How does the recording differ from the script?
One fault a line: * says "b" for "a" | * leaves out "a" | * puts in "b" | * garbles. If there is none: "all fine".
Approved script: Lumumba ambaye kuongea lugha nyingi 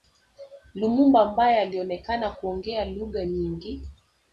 * puts in "alionekana"